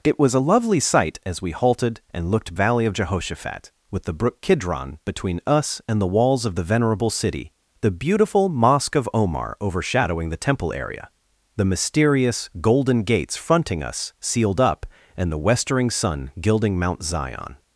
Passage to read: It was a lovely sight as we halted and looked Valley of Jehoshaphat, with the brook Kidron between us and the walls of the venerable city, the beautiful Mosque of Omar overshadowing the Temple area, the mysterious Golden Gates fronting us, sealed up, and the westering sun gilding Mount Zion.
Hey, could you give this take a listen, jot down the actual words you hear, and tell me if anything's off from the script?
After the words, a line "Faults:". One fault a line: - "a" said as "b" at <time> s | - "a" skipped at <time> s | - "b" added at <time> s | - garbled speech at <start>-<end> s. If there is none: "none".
It was a lovely sight as we halted and looked Valley of Jehoshaphat, with the brook Kidron between us and the walls of the venerable city, the beautiful Mosque of Omar overshadowing the Temple area, the mysterious Golden Gates fronting us, sealed up, and the westering sun gilding Mount Zion.
Faults:
none